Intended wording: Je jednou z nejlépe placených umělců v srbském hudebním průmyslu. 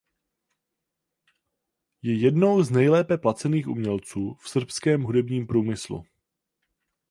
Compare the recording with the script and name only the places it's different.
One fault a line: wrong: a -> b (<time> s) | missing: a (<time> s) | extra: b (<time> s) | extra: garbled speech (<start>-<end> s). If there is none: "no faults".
no faults